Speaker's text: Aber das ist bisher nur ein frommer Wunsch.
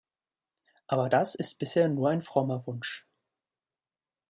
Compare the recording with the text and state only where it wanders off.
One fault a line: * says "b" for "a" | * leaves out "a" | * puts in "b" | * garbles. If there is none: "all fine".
all fine